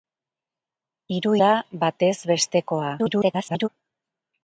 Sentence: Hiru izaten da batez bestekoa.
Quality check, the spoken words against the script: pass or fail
fail